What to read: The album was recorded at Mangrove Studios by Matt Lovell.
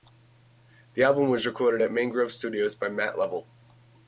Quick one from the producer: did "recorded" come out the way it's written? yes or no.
yes